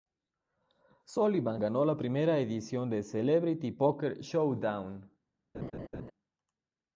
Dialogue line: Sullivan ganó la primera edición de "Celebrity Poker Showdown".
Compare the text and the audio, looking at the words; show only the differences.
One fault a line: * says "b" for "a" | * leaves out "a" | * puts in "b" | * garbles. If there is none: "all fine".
all fine